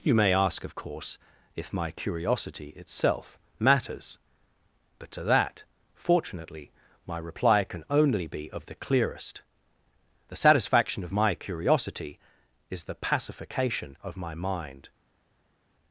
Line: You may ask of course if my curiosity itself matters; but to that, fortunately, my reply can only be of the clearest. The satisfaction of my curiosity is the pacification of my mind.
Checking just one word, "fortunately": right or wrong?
right